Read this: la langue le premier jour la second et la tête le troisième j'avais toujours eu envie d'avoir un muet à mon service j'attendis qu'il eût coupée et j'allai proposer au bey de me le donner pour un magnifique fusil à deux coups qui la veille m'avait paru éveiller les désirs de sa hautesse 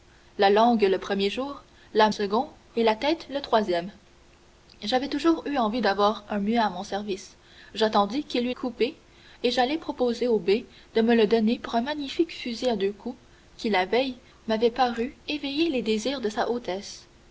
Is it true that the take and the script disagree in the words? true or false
false